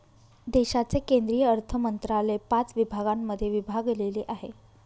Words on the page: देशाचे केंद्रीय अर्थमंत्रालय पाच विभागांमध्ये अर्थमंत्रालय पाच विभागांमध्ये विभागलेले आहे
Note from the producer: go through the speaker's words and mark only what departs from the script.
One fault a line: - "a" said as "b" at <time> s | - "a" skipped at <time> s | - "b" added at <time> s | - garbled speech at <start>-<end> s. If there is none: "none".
- "अर्थमंत्रालय पाच विभागांमध्ये" skipped at 3.5 s